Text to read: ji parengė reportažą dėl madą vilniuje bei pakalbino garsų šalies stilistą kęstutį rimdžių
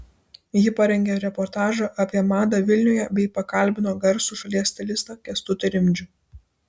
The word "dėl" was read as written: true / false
false